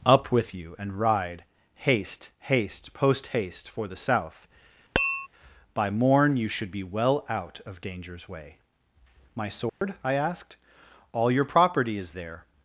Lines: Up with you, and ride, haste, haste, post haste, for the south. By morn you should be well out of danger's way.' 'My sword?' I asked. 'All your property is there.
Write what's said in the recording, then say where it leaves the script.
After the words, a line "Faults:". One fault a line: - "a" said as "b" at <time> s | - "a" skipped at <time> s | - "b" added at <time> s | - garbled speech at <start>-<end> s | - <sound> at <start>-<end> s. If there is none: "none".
Up with you, and ride, haste, haste, post haste, for the south. By morn you should be well out of danger's way.' 'My sword?' I asked. 'All your property is there.
Faults:
- tap at 5.0-5.3 s
- dropout at 9.7-9.8 s